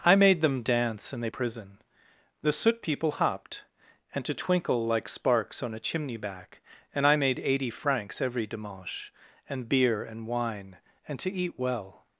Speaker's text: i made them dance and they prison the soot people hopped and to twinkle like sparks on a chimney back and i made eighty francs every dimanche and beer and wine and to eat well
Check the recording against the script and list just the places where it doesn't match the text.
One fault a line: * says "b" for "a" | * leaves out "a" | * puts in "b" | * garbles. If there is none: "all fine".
all fine